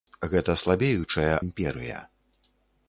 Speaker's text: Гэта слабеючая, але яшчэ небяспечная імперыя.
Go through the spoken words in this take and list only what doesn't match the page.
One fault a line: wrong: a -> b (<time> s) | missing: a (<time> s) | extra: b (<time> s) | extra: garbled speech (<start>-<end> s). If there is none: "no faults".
missing: але яшчэ небяспечная (1.4 s)